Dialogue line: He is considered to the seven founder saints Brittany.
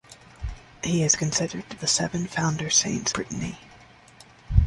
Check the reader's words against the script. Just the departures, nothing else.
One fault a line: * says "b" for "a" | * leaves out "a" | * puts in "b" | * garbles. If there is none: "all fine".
all fine